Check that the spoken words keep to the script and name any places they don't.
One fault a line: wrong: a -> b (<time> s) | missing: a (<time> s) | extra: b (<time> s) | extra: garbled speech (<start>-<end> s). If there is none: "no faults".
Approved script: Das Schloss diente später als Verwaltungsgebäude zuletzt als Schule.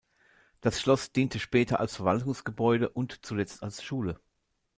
extra: und (2.9 s)